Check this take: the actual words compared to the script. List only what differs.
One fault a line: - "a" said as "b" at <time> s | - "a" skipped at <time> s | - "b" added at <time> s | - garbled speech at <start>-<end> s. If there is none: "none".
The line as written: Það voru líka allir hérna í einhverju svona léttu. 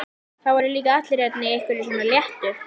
none